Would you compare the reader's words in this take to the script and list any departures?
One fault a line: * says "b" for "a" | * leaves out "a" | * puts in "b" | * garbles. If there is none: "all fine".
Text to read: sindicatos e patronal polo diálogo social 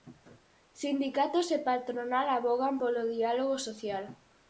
* puts in "avogan"